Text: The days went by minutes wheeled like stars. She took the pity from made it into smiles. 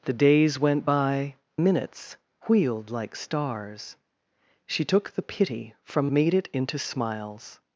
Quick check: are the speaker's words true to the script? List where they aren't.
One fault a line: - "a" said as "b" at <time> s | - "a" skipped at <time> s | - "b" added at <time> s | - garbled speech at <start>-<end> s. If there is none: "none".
none